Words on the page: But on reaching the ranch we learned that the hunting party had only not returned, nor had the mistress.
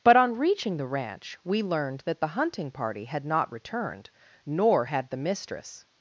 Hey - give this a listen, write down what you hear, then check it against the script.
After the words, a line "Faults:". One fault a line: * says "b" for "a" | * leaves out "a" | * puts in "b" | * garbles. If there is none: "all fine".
But on reaching the ranch we learned that the hunting party had not returned, nor had the mistress.
Faults:
* leaves out "only"